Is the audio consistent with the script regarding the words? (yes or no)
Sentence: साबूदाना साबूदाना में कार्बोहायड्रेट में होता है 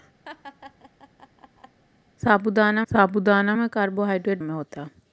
yes